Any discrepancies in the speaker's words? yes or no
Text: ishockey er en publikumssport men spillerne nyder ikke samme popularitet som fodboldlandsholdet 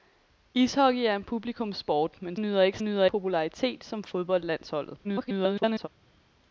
yes